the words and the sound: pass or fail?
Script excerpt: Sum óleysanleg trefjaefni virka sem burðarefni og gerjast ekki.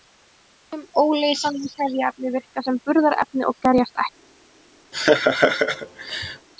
fail